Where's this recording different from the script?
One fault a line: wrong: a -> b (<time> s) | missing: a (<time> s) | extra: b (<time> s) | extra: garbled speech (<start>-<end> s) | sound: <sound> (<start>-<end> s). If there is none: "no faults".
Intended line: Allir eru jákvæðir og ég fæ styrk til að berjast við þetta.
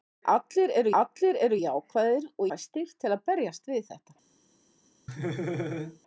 extra: allir eru (1.0 s)
missing: ég (2.5 s)
sound: laugh (5.1-6.0 s)